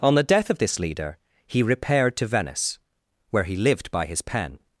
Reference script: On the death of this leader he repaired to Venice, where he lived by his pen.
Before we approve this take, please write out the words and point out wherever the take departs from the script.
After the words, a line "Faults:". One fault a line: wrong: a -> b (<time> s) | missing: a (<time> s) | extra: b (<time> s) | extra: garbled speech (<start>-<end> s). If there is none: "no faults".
On the death of this leader he repaired to Venice, where he lived by his pen.
Faults:
no faults